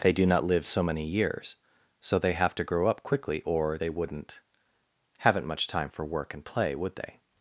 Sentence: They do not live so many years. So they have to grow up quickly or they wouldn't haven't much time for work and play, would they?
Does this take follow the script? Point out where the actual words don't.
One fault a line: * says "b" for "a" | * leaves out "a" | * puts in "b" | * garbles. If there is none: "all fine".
all fine